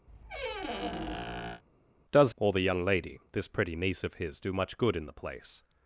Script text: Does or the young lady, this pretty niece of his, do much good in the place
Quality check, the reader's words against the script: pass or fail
pass